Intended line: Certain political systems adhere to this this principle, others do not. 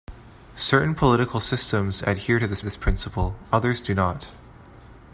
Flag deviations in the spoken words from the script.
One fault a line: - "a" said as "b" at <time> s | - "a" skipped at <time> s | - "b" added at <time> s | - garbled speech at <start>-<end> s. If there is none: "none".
none